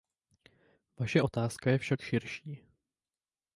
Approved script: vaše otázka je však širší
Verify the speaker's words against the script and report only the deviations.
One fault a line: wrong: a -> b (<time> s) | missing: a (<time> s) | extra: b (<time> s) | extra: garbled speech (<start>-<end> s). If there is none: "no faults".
no faults